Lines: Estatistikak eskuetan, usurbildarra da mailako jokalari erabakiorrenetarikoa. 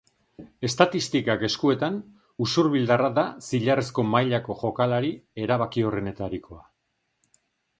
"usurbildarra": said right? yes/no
yes